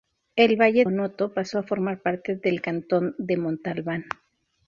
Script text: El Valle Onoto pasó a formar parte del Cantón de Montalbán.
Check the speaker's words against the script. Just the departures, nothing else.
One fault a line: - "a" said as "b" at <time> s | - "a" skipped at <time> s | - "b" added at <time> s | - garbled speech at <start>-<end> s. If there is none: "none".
none